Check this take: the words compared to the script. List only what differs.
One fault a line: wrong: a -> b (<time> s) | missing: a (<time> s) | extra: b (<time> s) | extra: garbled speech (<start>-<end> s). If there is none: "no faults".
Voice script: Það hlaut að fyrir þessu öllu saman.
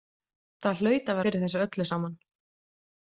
no faults